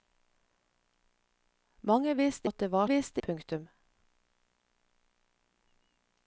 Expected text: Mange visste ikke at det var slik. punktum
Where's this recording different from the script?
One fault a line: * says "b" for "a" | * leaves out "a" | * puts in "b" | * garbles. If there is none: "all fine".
* leaves out "ikke"
* says "visste" for "slik"